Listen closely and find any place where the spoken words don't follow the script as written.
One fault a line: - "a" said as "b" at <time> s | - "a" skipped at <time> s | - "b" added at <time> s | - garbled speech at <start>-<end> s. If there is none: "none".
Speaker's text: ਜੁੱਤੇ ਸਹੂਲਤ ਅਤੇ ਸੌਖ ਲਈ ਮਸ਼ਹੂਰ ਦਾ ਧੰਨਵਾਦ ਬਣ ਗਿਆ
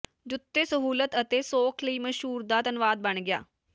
none